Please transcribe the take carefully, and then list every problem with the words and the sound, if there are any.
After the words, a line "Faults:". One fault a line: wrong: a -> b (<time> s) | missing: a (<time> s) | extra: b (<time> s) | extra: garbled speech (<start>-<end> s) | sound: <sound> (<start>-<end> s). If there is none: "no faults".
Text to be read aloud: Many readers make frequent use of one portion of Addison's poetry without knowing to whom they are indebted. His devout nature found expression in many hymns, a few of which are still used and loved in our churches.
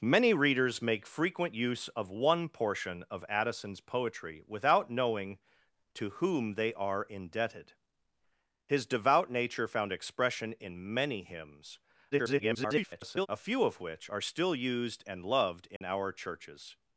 Many readers make frequent use of one portion of Addison's poetry without knowing to whom they are indebted. His devout nature found expression in many hymns, [garbled] a few of which are still used and loved in our churches.
Faults:
extra: garbled speech (12.1-13.3 s)
sound: dropout (15.8-15.8 s)